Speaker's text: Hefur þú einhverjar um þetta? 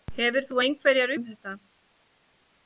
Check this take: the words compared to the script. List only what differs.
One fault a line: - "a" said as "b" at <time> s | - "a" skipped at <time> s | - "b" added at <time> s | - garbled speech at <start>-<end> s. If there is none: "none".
none